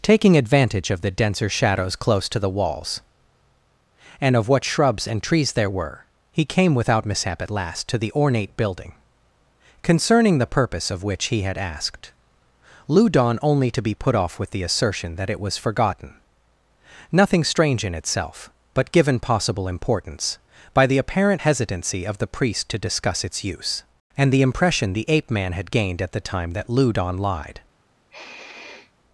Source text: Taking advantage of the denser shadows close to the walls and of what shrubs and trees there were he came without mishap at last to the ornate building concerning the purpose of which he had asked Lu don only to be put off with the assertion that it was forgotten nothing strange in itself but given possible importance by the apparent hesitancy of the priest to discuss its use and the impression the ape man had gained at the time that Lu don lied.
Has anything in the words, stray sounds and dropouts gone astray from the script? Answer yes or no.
yes